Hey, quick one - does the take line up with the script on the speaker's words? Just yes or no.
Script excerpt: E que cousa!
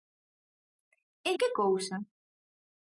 yes